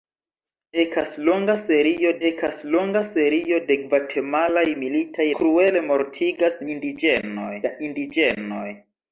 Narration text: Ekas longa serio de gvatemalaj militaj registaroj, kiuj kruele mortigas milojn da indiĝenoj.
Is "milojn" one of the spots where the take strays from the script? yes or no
yes